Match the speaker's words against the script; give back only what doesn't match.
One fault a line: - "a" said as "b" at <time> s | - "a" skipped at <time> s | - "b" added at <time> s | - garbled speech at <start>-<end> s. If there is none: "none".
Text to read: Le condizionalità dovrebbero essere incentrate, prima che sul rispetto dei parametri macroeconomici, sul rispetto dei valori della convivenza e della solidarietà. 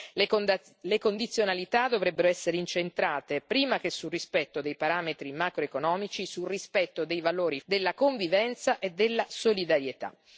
none